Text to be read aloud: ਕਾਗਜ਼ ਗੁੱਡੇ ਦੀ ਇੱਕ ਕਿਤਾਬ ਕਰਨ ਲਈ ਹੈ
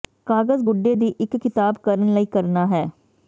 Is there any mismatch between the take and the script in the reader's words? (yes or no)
yes